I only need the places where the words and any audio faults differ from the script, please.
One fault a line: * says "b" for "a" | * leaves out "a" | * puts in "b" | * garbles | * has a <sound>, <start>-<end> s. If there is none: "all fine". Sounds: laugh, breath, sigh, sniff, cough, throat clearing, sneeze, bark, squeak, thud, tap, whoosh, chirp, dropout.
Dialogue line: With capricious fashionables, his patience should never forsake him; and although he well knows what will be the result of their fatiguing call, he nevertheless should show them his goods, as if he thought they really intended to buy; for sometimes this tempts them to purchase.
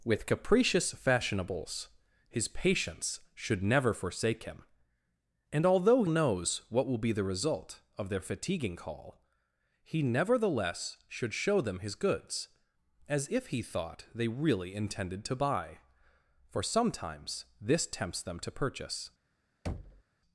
* leaves out "he well"
* has a thud, 19.7-20.0 s